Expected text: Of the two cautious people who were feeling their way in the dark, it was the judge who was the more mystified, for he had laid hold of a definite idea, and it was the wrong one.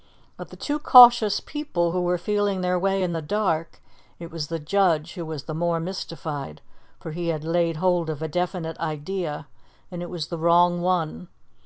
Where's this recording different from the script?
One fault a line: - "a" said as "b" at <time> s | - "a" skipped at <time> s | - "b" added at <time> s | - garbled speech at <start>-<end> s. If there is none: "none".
none